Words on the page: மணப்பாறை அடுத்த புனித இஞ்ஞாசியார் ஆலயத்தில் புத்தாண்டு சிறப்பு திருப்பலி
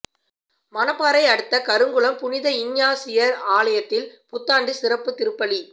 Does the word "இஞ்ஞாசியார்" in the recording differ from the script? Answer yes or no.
no